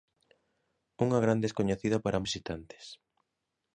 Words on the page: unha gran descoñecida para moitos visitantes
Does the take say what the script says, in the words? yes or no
no